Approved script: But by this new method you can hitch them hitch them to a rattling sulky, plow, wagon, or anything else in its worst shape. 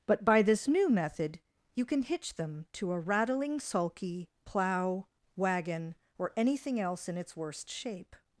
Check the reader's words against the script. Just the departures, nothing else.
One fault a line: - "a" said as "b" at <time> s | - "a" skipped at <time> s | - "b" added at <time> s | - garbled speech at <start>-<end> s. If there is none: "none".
- "hitch them" skipped at 2.6 s